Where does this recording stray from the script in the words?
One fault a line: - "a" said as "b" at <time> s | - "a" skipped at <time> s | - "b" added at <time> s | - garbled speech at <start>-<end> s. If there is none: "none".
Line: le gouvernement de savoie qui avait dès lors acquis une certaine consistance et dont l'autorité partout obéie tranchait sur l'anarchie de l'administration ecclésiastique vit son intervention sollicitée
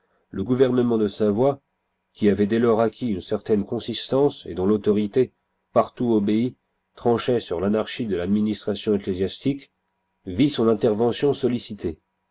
none